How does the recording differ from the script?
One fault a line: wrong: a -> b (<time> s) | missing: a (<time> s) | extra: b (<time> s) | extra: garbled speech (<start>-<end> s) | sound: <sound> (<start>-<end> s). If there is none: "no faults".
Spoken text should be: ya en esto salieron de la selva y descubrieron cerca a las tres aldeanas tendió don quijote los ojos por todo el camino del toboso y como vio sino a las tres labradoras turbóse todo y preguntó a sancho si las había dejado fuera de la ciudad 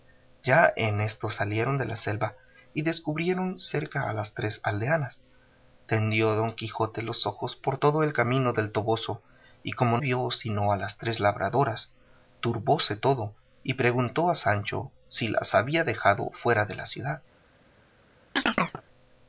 sound: chirp (18.4-18.8 s)